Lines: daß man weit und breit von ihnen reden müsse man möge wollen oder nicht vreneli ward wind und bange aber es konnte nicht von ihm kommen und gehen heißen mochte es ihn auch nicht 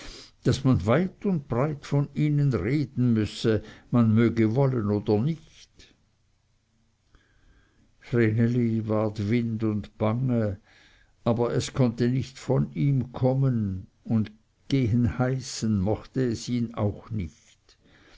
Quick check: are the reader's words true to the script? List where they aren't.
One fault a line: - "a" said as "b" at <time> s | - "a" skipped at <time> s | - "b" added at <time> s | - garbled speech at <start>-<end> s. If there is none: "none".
none